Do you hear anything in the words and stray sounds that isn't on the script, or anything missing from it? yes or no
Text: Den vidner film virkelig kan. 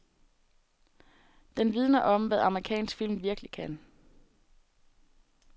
yes